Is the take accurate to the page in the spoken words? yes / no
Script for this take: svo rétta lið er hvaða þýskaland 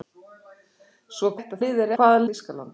yes